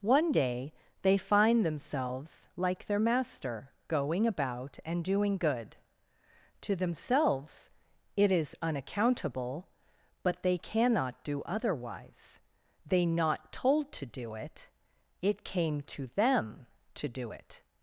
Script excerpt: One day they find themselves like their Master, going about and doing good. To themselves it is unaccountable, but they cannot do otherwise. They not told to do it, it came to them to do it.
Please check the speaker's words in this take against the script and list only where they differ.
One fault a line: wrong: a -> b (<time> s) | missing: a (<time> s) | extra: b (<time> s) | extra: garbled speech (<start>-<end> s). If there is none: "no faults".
no faults